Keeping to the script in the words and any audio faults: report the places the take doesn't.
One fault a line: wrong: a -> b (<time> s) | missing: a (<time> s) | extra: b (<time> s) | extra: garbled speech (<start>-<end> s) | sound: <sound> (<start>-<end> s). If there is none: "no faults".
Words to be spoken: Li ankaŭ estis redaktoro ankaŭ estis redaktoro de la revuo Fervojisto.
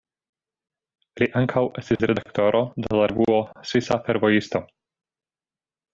sound: dropout (2.0-2.0 s)
missing: ankaŭ estis redaktoro (2.6 s)
extra: Svisa (3.7 s)